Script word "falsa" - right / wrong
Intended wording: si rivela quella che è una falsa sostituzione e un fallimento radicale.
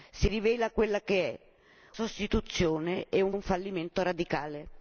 wrong